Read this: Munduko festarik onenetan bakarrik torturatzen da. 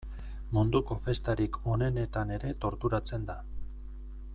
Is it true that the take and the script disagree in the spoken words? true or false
true